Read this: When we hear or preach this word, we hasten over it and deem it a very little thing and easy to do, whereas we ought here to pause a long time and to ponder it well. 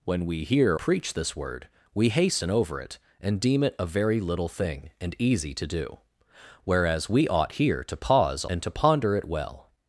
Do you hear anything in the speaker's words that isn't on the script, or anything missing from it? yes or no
yes